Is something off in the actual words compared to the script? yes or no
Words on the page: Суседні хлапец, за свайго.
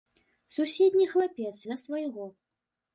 no